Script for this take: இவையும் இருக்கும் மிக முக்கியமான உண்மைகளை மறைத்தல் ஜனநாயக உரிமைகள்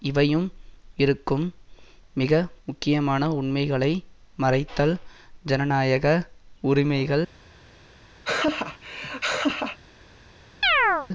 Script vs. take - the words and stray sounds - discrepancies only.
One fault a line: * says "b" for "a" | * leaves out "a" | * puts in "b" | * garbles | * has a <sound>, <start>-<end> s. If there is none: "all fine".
* has a laugh, 8.2-9.8 s
* has a chirp, 10.6-11.1 s